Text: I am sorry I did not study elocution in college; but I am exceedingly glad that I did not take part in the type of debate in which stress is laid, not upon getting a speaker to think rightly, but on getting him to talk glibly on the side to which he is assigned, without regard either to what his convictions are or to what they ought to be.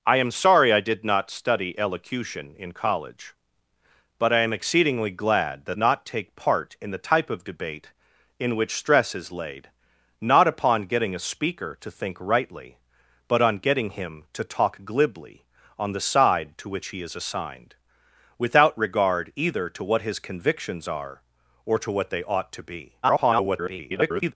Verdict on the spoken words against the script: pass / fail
fail